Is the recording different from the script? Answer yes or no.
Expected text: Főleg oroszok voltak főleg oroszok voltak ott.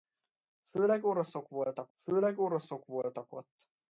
no